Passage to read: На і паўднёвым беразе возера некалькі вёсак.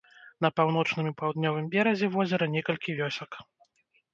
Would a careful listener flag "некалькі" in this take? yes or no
no